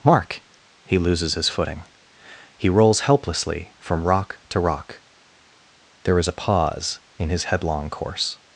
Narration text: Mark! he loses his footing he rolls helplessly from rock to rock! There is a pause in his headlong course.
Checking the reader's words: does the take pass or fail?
pass